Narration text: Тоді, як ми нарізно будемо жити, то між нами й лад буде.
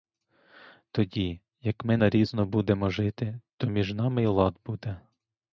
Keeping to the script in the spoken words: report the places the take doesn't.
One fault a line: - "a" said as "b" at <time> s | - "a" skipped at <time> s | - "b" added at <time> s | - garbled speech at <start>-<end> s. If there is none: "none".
none